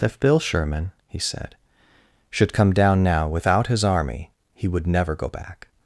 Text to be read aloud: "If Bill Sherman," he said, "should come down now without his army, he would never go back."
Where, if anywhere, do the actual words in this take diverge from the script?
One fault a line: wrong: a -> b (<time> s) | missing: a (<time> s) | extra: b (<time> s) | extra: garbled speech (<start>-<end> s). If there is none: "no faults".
no faults